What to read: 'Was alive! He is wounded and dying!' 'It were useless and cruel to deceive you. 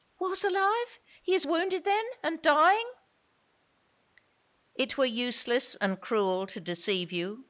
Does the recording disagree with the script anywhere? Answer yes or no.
yes